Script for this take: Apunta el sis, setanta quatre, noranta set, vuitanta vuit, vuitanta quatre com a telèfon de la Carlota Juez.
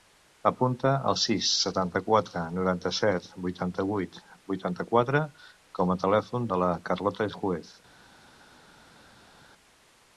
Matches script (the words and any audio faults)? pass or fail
pass